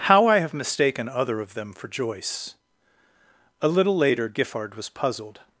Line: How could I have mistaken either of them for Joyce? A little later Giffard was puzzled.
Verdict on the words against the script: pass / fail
fail